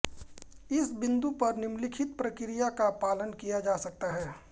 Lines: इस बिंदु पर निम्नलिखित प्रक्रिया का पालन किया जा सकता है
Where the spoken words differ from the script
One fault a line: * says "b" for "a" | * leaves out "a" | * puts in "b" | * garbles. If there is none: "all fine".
all fine